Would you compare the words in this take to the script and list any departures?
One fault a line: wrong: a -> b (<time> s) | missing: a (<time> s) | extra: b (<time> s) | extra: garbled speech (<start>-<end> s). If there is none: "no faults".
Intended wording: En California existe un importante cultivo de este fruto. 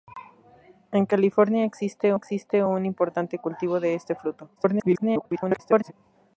extra: existe (2.1 s)
extra: garbled speech (4.6-5.9 s)